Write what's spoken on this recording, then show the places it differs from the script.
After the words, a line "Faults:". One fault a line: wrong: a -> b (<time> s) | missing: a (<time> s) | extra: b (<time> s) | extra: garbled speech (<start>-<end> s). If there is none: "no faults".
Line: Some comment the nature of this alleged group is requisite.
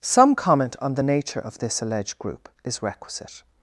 Some comment on the nature of this alleged group is requisite.
Faults:
extra: on (0.8 s)